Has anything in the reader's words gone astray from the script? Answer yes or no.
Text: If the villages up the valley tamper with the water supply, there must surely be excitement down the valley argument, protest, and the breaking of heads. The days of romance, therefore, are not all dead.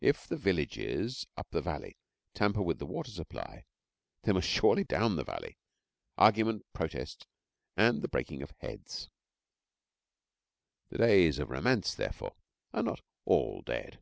yes